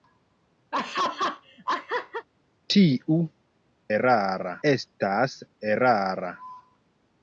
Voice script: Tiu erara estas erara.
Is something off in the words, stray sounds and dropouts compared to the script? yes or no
yes